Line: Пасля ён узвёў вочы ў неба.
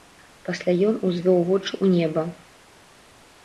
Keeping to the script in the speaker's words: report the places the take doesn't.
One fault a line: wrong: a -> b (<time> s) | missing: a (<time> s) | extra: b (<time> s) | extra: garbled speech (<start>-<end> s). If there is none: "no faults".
no faults